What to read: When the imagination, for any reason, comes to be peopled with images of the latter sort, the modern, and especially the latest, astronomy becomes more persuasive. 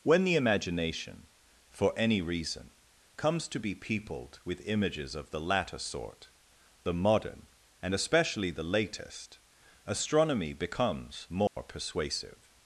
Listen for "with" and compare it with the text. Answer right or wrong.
right